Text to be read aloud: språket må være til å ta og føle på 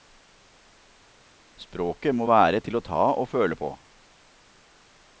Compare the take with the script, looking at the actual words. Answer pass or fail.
pass